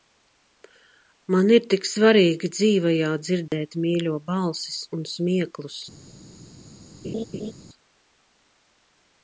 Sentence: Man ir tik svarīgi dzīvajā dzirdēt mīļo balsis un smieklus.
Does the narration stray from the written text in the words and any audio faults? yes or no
yes